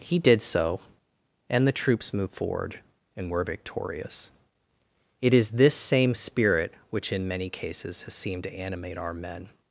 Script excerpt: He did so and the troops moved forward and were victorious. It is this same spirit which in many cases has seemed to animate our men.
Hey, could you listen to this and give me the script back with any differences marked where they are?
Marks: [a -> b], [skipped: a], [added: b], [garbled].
He did so and the troops moved forward and were victorious. It is this same spirit which in many cases has seemed to animate our men.